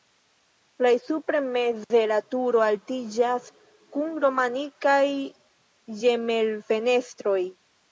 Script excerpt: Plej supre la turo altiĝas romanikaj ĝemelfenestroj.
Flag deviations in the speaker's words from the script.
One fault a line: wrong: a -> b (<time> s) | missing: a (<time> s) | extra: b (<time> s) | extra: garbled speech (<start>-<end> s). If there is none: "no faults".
extra: meze (1.6 s)
extra: kun (4.0 s)